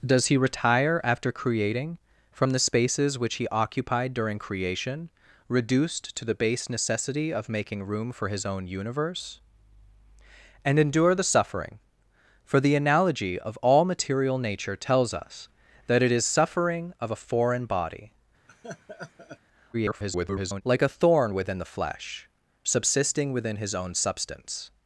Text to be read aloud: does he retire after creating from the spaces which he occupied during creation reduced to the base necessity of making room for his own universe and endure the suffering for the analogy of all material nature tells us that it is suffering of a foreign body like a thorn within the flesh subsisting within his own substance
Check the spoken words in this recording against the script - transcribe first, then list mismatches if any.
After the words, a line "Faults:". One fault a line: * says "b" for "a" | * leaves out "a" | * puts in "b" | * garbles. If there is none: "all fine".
does he retire after creating from the spaces which he occupied during creation reduced to the base necessity of making room for his own universe and endure the suffering for the analogy of all material nature tells us that it is suffering of a foreign body [garbled] like a thorn within the flesh subsisting within his own substance
Faults:
* garbles